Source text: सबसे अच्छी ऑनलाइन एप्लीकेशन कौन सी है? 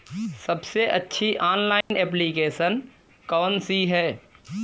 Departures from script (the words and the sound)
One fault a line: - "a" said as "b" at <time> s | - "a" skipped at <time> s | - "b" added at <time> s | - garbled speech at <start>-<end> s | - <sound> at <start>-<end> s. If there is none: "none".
- dropout at 1.8-1.9 s